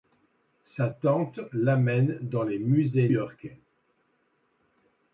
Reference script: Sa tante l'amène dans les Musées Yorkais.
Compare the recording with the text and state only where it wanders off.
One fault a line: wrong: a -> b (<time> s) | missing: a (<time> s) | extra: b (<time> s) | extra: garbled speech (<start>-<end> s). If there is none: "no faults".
no faults